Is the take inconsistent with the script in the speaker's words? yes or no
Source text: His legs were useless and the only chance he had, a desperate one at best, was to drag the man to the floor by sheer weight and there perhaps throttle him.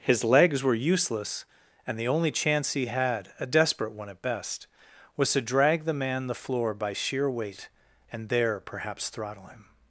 yes